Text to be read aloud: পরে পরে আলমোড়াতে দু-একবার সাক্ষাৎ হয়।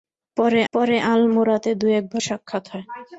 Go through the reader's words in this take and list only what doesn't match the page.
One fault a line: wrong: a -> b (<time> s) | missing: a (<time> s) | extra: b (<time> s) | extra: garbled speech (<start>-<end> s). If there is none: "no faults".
no faults